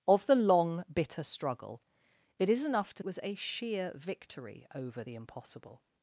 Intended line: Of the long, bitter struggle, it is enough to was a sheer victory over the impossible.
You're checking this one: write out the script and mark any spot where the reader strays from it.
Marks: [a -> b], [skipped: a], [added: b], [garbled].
Of the long, bitter struggle, it is enough to was a sheer victory over the impossible.